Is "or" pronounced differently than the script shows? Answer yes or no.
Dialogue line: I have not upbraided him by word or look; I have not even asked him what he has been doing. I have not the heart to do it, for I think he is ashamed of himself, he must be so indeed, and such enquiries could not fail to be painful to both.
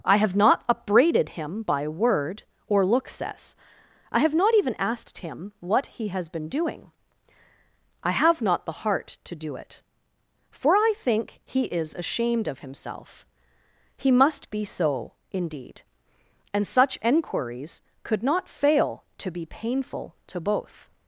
no